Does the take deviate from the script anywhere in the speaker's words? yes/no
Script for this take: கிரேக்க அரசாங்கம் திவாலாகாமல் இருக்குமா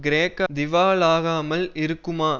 yes